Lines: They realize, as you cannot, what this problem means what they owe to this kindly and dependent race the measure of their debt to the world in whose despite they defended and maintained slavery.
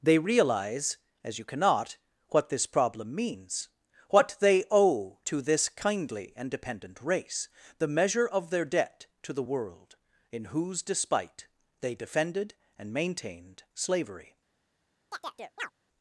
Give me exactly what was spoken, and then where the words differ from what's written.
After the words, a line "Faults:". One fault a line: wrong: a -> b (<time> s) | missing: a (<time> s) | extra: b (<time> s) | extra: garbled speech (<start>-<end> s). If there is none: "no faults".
They realize, as you cannot, what this problem means what they owe to this kindly and dependent race the measure of their debt to the world in whose despite they defended and maintained slavery.
Faults:
no faults